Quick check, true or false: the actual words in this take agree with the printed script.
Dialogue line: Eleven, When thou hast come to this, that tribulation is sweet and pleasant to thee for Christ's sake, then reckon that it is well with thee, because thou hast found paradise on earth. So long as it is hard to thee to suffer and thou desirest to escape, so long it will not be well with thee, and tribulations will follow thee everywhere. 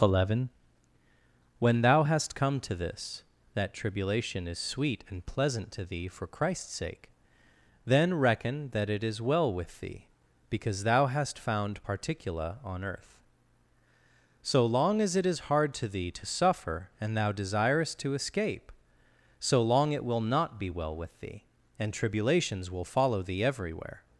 false